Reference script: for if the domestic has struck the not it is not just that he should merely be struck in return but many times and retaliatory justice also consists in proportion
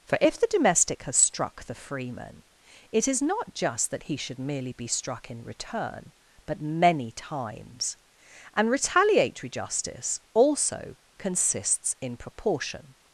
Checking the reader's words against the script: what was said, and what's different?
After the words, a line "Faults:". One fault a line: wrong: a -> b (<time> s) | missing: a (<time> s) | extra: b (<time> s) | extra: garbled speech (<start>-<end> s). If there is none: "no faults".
for if the domestic has struck the freeman it is not just that he should merely be struck in return but many times and retaliatory justice also consists in proportion
Faults:
wrong: not -> freeman (1.8 s)